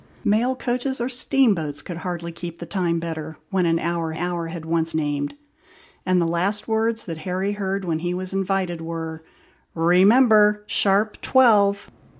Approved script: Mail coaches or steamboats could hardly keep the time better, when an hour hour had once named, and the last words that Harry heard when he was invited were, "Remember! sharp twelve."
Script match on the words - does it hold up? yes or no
yes